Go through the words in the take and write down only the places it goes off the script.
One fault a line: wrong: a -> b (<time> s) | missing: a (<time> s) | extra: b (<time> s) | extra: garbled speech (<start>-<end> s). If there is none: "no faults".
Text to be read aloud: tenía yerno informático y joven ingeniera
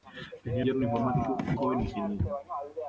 no faults